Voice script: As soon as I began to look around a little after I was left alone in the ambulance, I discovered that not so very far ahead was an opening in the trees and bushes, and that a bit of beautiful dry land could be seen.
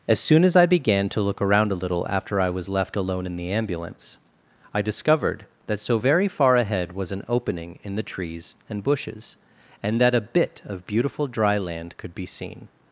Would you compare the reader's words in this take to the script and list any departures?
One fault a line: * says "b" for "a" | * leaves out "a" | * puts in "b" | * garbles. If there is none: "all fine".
* leaves out "not"